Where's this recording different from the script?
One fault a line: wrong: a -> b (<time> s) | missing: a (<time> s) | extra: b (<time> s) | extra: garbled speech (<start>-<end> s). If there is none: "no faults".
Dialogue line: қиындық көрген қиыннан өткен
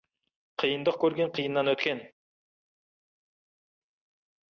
no faults